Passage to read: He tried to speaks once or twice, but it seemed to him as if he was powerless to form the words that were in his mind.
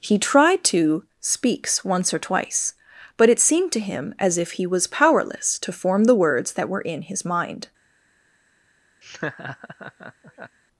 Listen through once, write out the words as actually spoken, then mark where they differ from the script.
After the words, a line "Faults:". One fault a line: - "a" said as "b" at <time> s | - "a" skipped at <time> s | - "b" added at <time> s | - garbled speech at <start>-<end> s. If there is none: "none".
He tried to speaks once or twice, but it seemed to him as if he was powerless to form the words that were in his mind.
Faults:
none